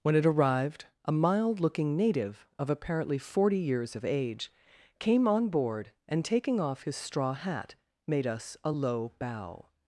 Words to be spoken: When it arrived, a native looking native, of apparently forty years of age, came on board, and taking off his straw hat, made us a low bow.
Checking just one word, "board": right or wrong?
right